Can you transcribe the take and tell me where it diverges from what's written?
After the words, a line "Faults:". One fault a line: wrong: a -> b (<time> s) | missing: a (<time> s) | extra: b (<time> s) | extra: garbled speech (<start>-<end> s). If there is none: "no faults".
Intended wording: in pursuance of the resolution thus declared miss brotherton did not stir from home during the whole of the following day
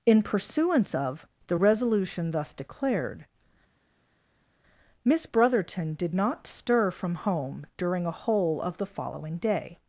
in pursuance of the resolution thus declared miss brotherton did not stir from home during a whole of the following day
Faults:
wrong: the -> a (8.0 s)